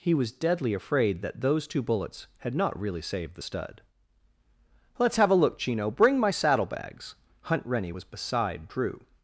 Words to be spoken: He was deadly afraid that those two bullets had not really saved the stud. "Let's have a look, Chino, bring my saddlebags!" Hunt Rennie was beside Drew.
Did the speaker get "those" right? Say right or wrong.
right